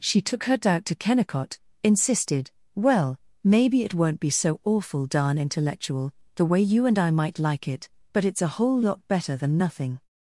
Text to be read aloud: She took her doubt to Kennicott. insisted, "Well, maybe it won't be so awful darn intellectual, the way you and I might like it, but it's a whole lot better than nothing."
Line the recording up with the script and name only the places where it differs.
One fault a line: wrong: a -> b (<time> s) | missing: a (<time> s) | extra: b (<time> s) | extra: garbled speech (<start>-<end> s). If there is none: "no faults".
no faults